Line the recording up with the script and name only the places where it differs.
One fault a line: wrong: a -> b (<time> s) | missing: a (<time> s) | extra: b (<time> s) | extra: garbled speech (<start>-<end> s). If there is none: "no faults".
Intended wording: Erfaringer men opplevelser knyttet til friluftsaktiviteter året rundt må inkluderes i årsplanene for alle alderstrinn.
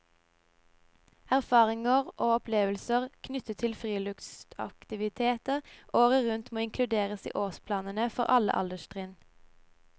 wrong: men -> og (2.2 s)